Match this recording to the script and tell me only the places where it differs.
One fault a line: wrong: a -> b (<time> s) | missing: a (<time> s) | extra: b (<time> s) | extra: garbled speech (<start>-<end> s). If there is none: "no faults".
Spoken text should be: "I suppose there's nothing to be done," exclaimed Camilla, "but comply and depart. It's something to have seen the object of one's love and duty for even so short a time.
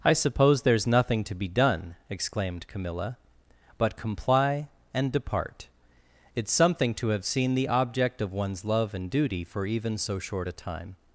no faults